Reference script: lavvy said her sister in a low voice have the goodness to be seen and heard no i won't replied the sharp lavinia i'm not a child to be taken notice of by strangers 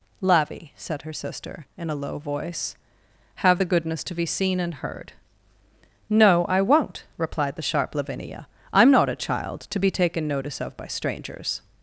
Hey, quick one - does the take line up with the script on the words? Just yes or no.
yes